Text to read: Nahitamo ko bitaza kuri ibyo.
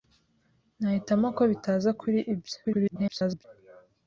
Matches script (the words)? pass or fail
fail